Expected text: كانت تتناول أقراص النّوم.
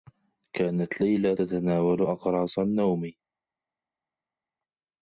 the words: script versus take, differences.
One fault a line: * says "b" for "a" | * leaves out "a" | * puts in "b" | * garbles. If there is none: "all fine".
* puts in "ليلى"